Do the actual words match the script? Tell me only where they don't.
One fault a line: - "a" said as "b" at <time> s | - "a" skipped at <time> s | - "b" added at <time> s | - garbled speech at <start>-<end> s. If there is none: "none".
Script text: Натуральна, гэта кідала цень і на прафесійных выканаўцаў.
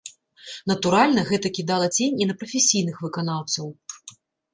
none